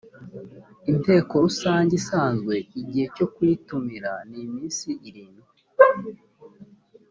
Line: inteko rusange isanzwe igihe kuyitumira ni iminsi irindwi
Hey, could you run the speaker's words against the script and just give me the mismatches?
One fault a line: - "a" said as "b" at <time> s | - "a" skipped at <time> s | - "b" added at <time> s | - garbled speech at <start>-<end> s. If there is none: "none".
- "cyo" added at 3.1 s